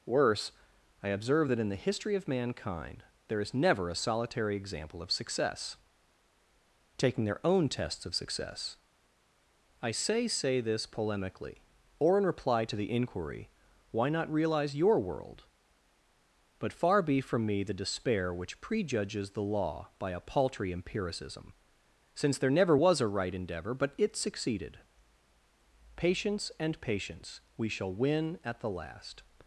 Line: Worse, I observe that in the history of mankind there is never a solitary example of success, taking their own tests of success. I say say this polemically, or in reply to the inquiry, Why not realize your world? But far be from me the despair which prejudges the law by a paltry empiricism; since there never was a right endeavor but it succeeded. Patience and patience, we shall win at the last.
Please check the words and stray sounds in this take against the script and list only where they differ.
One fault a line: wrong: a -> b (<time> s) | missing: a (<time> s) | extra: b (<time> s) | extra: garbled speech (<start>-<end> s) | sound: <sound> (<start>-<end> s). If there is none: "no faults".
no faults